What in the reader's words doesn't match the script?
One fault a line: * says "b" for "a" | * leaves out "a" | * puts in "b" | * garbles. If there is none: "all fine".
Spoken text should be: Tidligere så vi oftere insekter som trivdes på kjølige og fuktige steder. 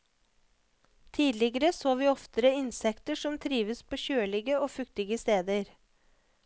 all fine